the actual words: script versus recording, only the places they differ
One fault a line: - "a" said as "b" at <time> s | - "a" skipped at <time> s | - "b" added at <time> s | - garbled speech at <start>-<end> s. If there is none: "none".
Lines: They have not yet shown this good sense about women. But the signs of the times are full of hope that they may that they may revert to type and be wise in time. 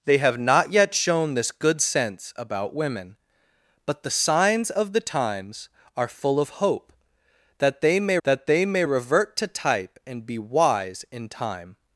none